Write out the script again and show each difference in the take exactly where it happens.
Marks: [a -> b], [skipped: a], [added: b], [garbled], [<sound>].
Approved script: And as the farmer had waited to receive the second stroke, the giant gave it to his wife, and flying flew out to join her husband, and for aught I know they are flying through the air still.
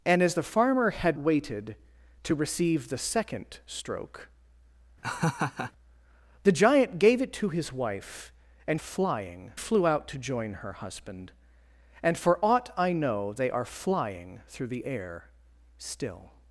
And as the farmer had waited to receive the second stroke, [laugh] the giant gave it to his wife, and flying flew out to join her husband, and for aught I know they are flying through the air still.